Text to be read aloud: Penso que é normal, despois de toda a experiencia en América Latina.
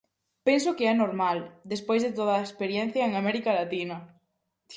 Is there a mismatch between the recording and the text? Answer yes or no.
no